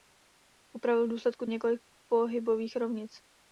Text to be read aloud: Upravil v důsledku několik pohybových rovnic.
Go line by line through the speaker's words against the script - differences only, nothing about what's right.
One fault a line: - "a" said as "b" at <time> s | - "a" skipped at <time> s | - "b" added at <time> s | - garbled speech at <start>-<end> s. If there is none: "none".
none